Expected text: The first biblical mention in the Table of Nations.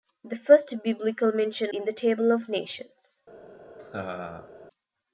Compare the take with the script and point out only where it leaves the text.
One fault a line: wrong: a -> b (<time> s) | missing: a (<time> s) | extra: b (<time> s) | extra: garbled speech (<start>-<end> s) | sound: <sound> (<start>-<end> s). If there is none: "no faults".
sound: laugh (3.8-4.5 s)